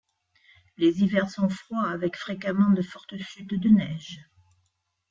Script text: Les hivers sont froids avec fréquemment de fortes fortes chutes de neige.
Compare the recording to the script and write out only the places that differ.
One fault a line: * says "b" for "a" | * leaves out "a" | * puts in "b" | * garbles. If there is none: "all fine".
* leaves out "fortes"